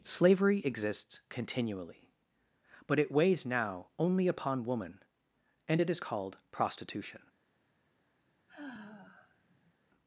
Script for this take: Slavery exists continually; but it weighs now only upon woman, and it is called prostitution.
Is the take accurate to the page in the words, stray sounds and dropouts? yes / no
no